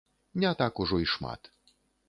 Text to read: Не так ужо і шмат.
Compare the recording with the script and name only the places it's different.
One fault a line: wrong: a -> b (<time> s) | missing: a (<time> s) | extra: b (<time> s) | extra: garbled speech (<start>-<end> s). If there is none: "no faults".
no faults